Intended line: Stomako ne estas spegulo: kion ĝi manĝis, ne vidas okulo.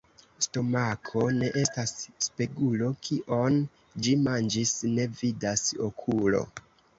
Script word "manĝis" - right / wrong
right